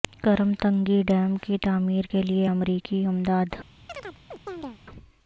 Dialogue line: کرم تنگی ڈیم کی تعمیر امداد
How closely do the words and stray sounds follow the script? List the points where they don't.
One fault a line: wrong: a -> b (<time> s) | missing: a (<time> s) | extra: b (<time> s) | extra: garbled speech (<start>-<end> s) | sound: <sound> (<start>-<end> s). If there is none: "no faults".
extra: کے لیے امریکی (2.1 s)
sound: chirp (3.9-4.8 s)